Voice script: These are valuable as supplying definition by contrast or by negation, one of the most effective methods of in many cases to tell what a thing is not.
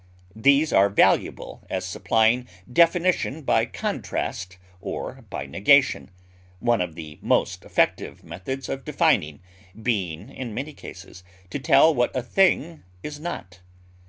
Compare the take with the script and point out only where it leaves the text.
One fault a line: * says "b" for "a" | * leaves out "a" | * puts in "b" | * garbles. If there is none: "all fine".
* puts in "defining being"